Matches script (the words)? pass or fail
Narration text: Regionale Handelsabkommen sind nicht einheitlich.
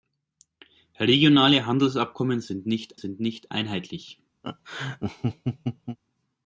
fail